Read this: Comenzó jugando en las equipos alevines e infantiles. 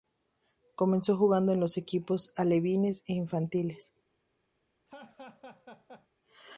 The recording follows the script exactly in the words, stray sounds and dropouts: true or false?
false